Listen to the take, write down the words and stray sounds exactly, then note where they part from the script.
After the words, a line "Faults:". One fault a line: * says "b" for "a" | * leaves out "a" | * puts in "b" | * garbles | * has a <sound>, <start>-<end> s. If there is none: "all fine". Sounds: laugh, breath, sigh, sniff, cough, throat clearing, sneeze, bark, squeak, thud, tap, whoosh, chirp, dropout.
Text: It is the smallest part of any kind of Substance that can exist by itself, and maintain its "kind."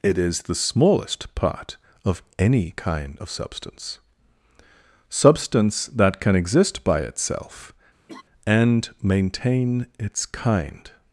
It is the smallest part of any kind of Substance Substance that can exist by itself, and maintain its "kind."
Faults:
* puts in "Substance"
* has a laugh, 8.1-8.2 s